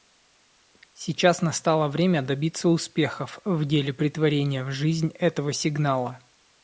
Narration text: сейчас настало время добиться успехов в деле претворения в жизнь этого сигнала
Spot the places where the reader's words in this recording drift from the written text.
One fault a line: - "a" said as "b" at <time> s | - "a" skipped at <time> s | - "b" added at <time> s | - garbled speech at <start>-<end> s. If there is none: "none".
none